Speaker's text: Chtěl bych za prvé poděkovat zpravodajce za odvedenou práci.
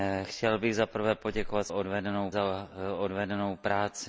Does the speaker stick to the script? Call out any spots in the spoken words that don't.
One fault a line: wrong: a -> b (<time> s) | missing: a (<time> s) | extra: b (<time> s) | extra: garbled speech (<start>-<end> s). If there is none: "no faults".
wrong: zpravodajce -> odvedenou (1.7 s)